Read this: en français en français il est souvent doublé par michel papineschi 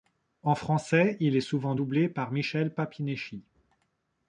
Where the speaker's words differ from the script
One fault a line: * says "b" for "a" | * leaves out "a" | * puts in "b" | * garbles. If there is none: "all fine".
* leaves out "en français"